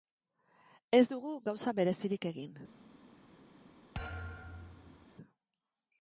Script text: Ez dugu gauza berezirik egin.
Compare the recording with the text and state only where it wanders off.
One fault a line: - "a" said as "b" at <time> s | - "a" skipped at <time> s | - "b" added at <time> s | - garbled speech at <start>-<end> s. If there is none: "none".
none